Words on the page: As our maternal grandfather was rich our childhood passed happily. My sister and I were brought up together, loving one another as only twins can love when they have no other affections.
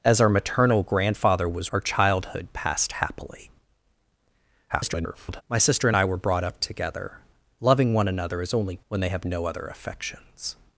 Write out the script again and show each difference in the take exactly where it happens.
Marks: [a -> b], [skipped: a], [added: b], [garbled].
As our maternal grandfather was [skipped: rich] our childhood passed happily. [garbled] My sister and I were brought up together, loving one another as only [skipped: twins can love] when they have no other affections.